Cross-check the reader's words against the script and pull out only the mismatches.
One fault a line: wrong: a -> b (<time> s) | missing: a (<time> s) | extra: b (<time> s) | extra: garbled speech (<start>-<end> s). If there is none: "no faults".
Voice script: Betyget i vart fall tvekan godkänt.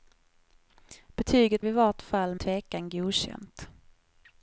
no faults